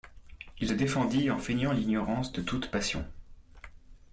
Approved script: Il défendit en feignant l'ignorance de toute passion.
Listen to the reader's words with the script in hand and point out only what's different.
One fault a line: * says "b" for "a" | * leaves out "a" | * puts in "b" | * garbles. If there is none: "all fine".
all fine